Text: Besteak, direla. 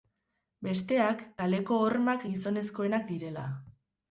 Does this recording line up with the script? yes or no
no